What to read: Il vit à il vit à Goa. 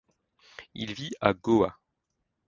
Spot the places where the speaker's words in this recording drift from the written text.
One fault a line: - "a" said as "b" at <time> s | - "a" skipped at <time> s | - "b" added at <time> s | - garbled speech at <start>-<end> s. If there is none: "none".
- "il vit à" skipped at 1.3 s